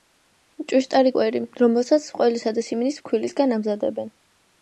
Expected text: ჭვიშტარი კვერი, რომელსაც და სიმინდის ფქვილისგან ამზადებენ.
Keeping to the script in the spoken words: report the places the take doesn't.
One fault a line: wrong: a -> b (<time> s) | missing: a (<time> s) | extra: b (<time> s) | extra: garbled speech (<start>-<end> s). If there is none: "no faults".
extra: ყველისა (2.2 s)